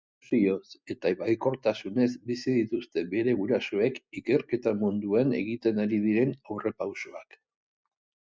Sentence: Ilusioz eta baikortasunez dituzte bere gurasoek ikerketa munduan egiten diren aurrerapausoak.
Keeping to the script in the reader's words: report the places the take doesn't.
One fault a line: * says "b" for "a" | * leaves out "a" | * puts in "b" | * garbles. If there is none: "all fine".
* puts in "bizi"
* puts in "ari"